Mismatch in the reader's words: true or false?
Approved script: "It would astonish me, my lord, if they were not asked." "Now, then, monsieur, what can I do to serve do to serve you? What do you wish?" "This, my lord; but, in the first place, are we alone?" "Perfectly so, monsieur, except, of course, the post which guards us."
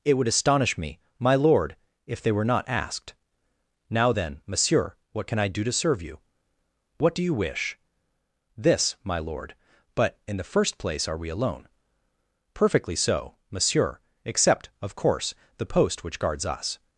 true